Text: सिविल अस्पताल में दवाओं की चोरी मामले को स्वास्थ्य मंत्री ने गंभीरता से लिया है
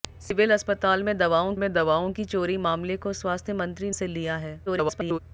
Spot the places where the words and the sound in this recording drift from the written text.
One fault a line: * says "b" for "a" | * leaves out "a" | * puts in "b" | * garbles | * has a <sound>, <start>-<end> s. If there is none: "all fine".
* puts in "में दवाओं"
* leaves out "ने गंभीरता"
* garbles